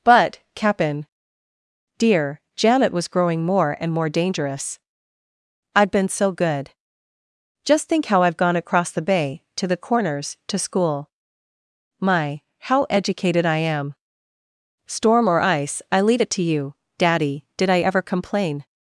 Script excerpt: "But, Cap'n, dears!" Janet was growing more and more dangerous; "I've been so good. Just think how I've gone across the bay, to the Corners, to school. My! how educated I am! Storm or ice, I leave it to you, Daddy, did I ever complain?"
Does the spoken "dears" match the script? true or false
false